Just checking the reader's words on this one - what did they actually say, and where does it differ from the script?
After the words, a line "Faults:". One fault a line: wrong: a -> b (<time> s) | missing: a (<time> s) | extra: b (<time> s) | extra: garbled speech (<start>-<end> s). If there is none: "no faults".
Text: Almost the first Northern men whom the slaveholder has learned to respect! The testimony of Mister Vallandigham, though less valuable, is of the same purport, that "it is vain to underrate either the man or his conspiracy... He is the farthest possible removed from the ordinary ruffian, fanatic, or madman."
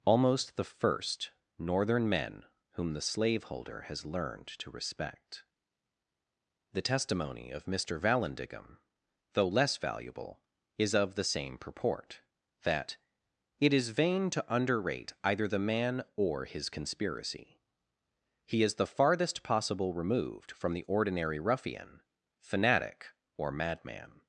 Almost the first Northern men whom the slaveholder has learned to respect! The testimony of Mister Vallandigham, though less valuable, is of the same purport, that "it is vain to underrate either the man or his conspiracy... He is the farthest possible removed from the ordinary ruffian, fanatic, or madman."
Faults:
no faults